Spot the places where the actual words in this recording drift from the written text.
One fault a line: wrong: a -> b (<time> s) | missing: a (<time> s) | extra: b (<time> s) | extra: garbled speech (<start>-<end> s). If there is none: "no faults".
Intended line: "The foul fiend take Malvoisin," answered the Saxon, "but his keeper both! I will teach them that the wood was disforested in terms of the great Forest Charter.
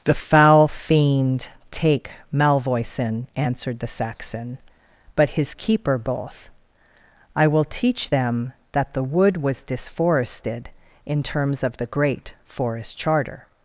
no faults